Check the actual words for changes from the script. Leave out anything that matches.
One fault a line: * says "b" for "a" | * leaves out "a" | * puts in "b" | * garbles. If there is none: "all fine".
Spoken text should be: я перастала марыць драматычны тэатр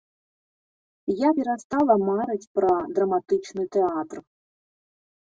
* puts in "пра"